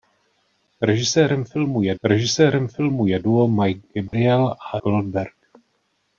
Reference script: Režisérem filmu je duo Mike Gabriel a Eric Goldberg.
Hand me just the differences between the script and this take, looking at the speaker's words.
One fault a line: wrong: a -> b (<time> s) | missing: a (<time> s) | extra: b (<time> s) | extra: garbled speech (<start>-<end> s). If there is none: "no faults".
extra: režisérem filmu je (2.0 s)
missing: Eric (4.8 s)